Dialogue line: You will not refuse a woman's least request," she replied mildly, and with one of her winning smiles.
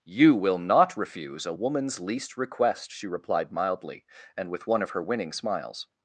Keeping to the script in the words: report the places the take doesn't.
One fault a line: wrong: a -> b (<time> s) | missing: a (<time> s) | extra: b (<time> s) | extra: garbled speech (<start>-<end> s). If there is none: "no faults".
no faults